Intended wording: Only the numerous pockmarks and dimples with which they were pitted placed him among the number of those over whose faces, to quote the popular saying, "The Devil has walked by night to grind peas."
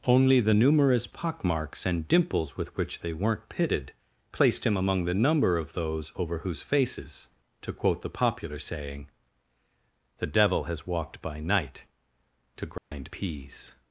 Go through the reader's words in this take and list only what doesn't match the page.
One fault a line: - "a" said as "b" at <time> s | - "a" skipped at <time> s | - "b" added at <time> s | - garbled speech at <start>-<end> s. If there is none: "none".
- "were" said as "weren't" at 3.1 s